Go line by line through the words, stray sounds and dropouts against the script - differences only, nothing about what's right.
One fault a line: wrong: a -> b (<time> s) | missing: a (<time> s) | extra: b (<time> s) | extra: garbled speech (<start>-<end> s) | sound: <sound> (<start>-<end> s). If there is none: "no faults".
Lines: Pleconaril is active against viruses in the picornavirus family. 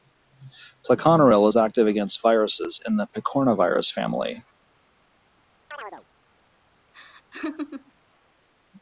sound: chirp (5.7-6.1 s)
sound: laugh (6.9-7.9 s)